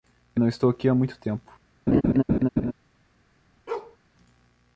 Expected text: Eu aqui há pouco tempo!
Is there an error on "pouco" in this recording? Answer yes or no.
yes